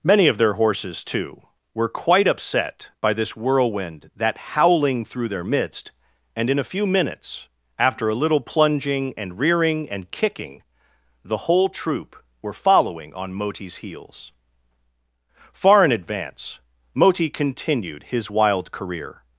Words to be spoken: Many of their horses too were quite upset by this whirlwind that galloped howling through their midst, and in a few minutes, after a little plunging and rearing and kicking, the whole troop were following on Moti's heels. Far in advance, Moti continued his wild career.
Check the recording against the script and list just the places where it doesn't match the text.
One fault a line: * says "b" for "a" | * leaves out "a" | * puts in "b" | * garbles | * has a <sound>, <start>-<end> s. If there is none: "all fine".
* leaves out "galloped"